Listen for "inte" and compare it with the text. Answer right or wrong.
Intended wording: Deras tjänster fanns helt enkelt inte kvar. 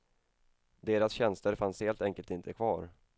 right